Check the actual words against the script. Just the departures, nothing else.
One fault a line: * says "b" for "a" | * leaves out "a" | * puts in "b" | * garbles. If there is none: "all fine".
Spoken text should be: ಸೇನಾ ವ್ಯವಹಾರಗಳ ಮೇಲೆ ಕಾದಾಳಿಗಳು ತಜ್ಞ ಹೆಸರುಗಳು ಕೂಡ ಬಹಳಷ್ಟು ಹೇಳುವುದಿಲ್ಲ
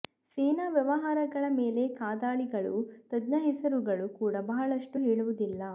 all fine